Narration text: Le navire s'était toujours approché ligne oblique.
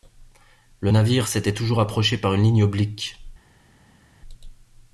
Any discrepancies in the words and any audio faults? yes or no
yes